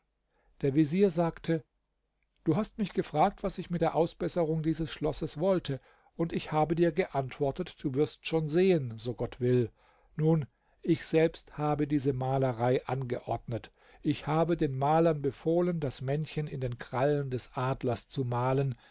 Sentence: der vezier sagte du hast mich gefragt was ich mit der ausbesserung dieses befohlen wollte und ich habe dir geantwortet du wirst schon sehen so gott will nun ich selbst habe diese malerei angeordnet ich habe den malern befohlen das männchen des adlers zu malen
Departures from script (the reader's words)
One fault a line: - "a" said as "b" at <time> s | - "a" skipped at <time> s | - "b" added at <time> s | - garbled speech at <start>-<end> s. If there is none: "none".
- "befohlen" said as "schlosses" at 4.9 s
- "in den krallen" added at 16.5 s